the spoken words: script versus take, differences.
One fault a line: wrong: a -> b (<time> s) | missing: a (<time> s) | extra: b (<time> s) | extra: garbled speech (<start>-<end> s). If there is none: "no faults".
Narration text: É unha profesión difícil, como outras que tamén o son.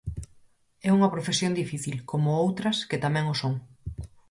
no faults